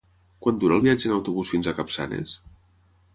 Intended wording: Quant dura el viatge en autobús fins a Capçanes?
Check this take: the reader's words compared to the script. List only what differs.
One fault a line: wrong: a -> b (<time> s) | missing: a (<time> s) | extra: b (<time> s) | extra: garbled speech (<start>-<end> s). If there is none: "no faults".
no faults